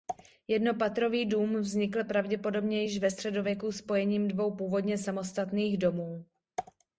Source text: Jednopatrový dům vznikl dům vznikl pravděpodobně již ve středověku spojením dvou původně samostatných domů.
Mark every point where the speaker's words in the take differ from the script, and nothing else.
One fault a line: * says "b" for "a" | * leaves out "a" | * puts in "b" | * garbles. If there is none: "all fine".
* leaves out "dům vznikl"